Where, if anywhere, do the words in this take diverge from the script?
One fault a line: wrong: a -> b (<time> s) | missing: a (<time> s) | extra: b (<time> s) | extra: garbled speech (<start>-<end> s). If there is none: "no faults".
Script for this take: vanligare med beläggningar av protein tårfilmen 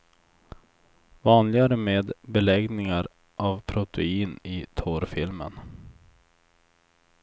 extra: i (4.4 s)